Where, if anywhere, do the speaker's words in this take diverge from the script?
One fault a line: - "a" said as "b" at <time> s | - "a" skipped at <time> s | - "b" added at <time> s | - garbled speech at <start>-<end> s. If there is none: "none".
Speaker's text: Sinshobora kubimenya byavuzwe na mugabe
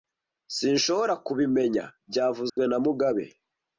none